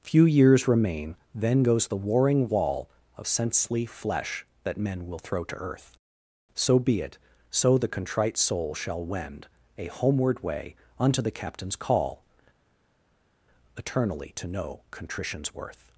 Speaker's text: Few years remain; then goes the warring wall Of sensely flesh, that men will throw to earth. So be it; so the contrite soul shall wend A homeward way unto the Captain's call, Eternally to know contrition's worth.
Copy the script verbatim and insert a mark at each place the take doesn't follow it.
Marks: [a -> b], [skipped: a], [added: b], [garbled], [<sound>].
Few years remain; then goes the warring wall Of sensely flesh, that men will throw to earth. So be it; so the contrite soul shall wend A homeward way unto the Captain's call, Eternally to know contrition's worth.